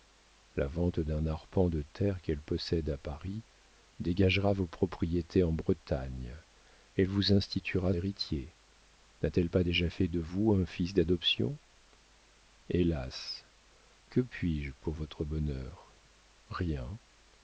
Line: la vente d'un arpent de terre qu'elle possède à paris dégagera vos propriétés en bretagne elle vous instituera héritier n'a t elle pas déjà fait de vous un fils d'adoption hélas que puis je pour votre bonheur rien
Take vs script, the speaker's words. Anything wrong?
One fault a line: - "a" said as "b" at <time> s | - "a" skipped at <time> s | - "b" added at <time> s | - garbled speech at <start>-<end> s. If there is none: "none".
none